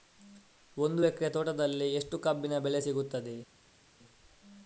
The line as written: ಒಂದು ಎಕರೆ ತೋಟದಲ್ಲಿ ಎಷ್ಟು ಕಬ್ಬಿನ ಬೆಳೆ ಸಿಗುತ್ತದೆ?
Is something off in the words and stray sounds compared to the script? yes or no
no